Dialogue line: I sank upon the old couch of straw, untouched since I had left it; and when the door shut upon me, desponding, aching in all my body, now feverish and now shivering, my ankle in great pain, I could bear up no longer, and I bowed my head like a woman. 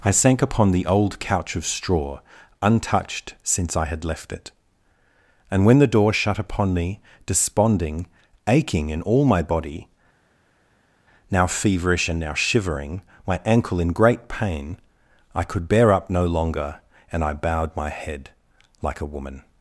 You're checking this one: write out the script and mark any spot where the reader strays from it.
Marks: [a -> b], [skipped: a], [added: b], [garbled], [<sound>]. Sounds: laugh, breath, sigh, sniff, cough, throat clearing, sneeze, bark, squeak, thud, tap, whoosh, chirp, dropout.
I sank upon the old couch of straw, untouched since I had left it; and when the door shut upon me, desponding, aching in all my body, now feverish and now shivering, my ankle in great pain, I could bear up no longer, and I bowed my head like a woman.